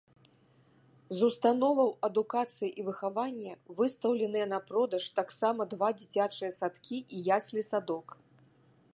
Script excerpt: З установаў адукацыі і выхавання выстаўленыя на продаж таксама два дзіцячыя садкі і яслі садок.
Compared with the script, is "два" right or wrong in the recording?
right